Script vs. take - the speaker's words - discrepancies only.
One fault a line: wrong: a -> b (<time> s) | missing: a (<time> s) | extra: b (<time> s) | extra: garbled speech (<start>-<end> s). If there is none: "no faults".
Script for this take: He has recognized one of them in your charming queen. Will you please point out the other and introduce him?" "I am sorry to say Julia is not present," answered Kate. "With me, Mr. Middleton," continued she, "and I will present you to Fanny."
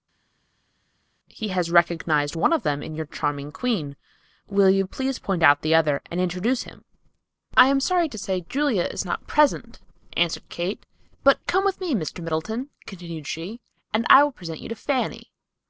extra: But come (11.2 s)